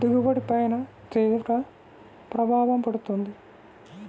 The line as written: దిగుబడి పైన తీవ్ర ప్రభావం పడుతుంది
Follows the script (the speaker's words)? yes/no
yes